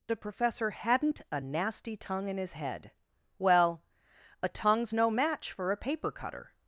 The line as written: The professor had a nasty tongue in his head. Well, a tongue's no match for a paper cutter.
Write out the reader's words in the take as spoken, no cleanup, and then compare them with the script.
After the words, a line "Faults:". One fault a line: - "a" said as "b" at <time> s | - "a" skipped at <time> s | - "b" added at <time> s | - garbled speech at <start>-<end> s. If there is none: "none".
The professor hadn't a nasty tongue in his head. Well, a tongue's no match for a paper cutter.
Faults:
- "had" said as "hadn't" at 0.7 s